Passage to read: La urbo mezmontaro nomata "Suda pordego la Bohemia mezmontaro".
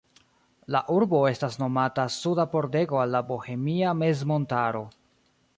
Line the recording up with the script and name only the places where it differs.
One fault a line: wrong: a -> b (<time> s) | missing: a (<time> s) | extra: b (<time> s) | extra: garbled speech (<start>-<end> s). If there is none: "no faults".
wrong: mezmontaro -> estas (1.3 s)
extra: al (3.0 s)